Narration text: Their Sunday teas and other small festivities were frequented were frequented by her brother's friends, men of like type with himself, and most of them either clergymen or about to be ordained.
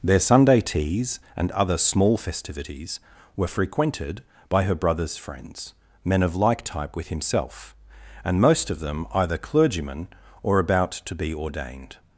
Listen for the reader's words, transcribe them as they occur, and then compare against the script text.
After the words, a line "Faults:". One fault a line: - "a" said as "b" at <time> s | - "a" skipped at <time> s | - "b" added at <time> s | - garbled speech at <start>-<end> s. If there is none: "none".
Their Sunday teas and other small festivities were frequented by her brother's friends, men of like type with himself, and most of them either clergymen or about to be ordained.
Faults:
- "were frequented" skipped at 4.2 s